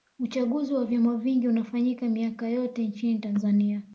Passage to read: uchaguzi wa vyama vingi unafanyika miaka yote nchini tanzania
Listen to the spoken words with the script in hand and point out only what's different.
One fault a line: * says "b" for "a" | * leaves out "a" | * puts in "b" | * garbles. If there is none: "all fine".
all fine